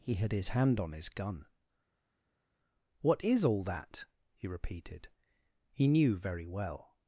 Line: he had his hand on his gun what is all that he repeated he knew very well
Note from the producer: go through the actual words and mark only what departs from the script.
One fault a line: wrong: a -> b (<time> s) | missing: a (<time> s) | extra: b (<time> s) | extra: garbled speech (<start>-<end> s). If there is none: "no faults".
no faults